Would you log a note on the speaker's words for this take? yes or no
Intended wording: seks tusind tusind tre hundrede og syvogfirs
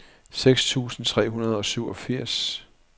yes